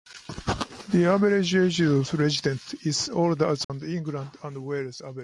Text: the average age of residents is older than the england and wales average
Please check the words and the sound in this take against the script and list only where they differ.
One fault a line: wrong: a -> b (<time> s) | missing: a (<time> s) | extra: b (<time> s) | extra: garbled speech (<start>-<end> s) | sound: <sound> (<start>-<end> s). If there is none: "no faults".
sound: dropout (3.6-3.7 s)